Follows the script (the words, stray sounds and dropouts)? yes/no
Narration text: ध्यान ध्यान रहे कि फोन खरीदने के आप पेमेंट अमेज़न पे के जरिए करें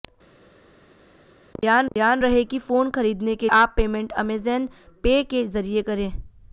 yes